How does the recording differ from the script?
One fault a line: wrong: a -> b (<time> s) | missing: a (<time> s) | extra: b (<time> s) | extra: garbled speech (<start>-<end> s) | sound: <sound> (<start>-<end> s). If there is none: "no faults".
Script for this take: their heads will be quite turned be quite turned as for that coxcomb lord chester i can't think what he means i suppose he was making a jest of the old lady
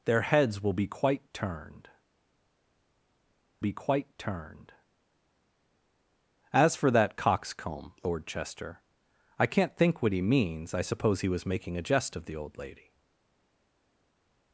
no faults